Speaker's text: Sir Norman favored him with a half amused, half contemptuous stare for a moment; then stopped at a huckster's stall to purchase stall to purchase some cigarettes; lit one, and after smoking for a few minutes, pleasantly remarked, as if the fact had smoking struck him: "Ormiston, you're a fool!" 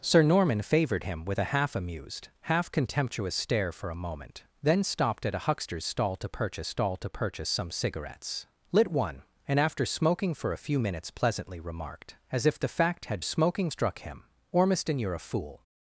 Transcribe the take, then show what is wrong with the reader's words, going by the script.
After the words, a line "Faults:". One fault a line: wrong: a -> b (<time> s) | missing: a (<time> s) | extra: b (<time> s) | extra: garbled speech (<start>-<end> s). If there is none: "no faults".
Sir Norman favored him with a half amused, half contemptuous stare for a moment; then stopped at a huckster's stall to purchase stall to purchase some cigarettes; lit one, and after smoking for a few minutes, pleasantly remarked, as if the fact had smoking struck him: "Ormiston, you're a fool!"
Faults:
no faults